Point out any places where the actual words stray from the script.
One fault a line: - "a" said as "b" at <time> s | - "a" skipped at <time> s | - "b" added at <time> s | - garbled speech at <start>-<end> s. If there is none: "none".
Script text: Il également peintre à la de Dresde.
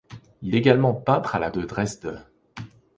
none